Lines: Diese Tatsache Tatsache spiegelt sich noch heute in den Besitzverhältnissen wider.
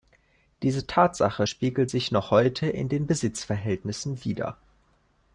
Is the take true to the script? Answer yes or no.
no